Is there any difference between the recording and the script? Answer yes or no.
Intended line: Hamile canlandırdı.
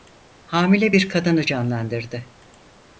yes